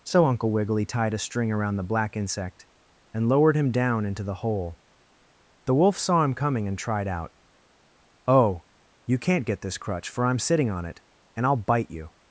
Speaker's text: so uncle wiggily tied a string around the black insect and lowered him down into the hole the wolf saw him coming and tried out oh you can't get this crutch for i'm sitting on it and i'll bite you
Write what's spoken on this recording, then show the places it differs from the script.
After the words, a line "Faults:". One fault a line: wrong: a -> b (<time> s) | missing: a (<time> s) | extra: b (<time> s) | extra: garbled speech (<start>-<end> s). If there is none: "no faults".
so uncle wiggily tied a string around the black insect and lowered him down into the hole the wolf saw him coming and tried out oh you can't get this crutch for i'm sitting on it and i'll bite you
Faults:
no faults